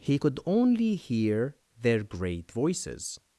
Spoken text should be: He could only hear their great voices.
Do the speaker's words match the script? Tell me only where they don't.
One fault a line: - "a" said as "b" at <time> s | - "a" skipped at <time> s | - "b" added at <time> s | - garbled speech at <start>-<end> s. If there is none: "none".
none